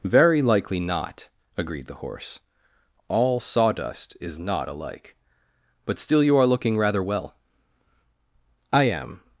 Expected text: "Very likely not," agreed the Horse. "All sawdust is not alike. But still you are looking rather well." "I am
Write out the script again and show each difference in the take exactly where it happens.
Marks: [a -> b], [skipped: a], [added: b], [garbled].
"Very likely not," agreed the Horse. "All sawdust is not alike. But still you are looking rather well." "I am